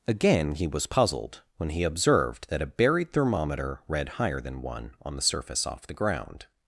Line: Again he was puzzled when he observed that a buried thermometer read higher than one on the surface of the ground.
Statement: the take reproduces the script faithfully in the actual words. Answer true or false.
false